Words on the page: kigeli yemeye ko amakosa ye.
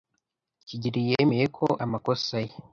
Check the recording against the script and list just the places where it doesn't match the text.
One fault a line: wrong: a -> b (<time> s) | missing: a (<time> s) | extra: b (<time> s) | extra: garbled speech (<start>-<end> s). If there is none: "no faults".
no faults